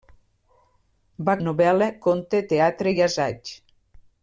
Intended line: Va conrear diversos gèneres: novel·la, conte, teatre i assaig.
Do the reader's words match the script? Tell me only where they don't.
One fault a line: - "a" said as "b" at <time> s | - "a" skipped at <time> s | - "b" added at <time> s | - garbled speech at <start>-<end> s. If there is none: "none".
- "conrear diversos gèneres" skipped at 1.4 s